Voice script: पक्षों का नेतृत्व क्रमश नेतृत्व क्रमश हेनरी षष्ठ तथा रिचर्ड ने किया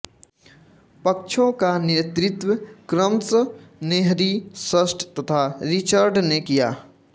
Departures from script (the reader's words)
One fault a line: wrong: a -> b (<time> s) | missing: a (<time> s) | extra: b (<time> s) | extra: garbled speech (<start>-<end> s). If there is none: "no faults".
missing: नेतृत्व क्रमश (3.3 s)